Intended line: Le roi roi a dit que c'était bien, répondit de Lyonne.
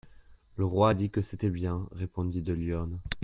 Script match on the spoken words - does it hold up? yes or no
no